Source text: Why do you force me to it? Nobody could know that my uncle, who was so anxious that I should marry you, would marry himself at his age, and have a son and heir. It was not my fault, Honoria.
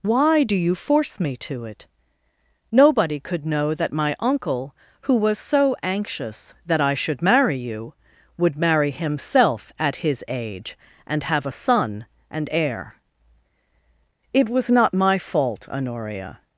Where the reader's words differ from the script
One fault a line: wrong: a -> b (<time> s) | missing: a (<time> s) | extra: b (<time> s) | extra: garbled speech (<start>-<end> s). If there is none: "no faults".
no faults